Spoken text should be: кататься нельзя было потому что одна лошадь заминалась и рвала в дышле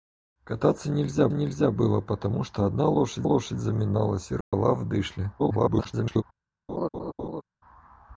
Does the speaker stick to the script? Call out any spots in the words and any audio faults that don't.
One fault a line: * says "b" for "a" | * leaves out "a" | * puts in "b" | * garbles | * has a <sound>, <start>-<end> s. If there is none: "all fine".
* puts in "нельзя"
* puts in "лошадь"
* has a dropout, 4.4-4.5 s
* garbles
* has a laugh, 6.7-7.4 s